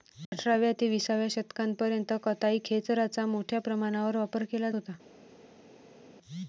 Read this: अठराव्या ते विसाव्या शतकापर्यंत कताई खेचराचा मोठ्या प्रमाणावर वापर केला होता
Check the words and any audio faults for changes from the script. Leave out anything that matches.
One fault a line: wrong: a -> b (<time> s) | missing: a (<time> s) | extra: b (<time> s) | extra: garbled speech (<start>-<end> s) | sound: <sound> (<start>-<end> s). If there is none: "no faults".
no faults